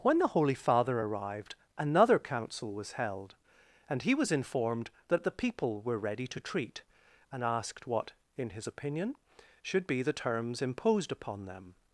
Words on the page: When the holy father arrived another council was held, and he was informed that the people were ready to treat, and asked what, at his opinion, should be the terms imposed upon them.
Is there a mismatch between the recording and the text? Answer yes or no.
yes